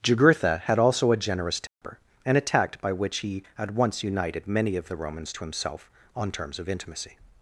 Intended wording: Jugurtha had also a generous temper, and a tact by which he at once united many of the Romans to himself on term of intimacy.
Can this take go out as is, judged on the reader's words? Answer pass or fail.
fail